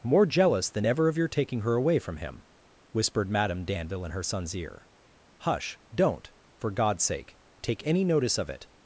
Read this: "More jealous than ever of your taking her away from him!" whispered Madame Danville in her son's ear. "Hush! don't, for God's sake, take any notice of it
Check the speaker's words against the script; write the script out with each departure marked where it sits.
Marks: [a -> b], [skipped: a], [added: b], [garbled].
"More jealous than ever of your taking her away from him!" whispered Madame Danville in her son's ear. "Hush! don't, for God's sake, take any notice of it